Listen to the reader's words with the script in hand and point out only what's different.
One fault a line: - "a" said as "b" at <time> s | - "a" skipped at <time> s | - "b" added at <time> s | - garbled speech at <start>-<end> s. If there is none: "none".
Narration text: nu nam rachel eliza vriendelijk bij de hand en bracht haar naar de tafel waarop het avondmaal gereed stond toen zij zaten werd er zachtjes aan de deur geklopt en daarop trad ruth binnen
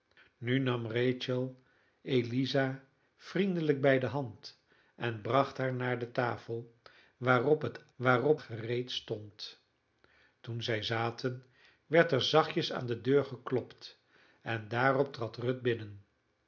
- "avondmaal" said as "waarop" at 8.0 s